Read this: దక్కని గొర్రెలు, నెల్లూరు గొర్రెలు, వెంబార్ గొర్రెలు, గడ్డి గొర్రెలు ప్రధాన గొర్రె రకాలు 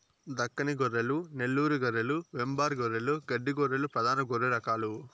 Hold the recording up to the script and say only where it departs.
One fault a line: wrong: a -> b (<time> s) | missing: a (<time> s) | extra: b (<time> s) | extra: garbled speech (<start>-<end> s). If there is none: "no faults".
no faults